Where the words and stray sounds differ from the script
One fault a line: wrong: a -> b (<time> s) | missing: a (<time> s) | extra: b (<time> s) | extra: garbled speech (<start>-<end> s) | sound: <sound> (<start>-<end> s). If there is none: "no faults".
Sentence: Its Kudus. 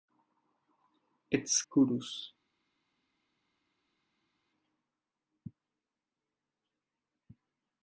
no faults